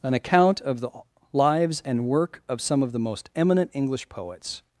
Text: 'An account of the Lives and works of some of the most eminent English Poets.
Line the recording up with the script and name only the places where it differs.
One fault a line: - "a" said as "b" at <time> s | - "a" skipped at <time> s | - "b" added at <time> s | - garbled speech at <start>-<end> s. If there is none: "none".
- "works" said as "work" at 2.1 s